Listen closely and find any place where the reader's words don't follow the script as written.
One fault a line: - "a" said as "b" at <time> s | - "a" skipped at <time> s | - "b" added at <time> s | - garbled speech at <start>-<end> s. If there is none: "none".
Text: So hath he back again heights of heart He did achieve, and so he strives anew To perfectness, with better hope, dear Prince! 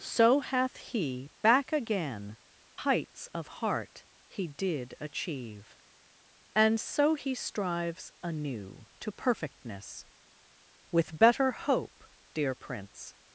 none